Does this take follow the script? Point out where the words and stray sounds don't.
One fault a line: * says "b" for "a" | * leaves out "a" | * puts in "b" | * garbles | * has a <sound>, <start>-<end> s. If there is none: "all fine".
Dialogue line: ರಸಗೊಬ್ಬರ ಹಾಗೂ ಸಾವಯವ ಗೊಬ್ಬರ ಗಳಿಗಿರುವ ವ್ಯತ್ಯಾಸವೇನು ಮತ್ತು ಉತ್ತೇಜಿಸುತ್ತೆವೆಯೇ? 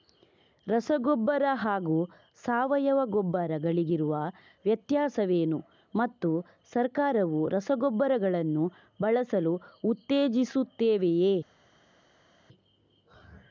* puts in "ಸರ್ಕಾರವು ರಸಗೊಬ್ಬರಗಳನ್ನು ಬಳಸಲು"